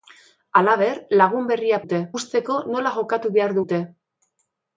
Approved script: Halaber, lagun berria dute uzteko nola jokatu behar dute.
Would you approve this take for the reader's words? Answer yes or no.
yes